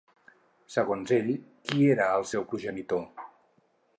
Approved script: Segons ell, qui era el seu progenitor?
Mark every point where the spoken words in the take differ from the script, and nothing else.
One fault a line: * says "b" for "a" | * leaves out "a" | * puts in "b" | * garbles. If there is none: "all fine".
all fine